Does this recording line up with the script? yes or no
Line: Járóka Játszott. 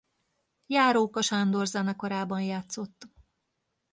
no